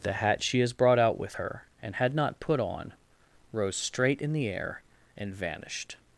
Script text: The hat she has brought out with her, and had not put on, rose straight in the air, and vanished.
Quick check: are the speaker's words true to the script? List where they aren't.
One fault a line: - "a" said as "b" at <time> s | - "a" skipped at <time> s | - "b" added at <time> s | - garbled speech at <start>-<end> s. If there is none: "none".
none